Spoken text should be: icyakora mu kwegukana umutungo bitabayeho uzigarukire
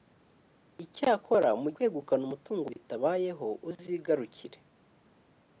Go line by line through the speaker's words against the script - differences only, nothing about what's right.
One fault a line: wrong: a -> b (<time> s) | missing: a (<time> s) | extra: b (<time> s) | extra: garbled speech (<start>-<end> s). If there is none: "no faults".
no faults